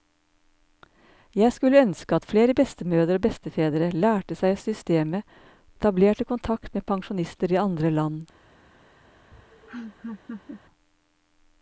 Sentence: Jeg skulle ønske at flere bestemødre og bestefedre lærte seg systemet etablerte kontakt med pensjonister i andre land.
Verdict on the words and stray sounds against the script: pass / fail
fail